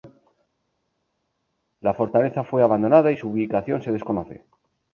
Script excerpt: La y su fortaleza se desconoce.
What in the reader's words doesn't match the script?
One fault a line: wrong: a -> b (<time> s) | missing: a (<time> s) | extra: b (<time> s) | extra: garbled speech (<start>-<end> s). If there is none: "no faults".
extra: fortaleza fue abandonada (1.9 s)
wrong: fortaleza -> ubicación (3.3 s)